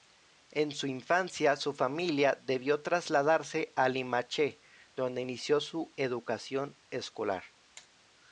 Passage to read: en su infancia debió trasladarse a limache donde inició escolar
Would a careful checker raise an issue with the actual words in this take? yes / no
yes